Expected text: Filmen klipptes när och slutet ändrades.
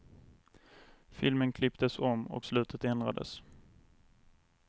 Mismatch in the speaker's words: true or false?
true